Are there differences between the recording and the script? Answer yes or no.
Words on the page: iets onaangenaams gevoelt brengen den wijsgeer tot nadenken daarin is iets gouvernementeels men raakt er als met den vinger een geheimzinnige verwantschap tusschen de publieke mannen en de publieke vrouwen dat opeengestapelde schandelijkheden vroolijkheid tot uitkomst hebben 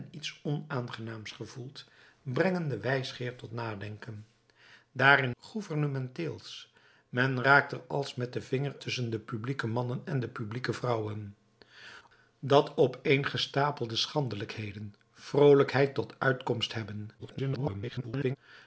yes